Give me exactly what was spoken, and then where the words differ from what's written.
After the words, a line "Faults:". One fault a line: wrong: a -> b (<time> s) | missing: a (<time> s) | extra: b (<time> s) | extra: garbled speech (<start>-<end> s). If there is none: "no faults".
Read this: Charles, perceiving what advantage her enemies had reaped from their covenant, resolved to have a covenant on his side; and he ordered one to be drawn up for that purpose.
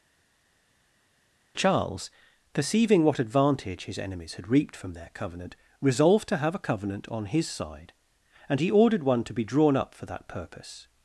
Charles, perceiving what advantage his enemies had reaped from their covenant, resolved to have a covenant on his side; and he ordered one to be drawn up for that purpose.
Faults:
wrong: her -> his (3.9 s)